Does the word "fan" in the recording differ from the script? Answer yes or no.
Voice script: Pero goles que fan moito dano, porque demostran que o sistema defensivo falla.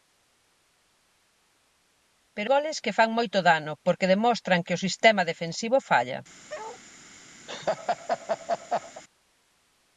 no